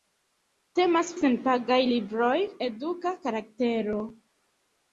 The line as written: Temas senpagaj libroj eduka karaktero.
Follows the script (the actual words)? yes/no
yes